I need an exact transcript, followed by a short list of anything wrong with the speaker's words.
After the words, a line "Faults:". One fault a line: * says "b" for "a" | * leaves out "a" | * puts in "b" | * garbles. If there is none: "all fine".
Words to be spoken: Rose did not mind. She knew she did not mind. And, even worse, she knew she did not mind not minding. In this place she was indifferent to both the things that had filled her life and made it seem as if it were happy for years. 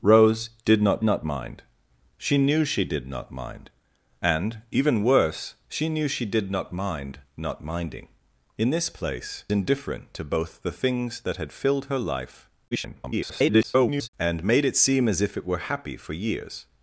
Rose did not not mind. She knew she did not mind. And, even worse, she knew she did not mind not minding. In this place indifferent to both the things that had filled her life [garbled] and made it seem as if it were happy for years.
Faults:
* puts in "not"
* leaves out "she was"
* garbles